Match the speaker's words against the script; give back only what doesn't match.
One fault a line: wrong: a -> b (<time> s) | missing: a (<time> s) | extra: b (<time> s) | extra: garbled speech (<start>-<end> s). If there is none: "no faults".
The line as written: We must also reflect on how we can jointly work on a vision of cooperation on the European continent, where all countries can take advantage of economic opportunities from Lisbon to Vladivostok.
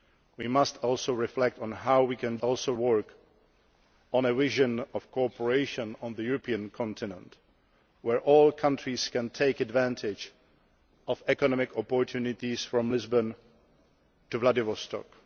wrong: jointly -> also (2.4 s)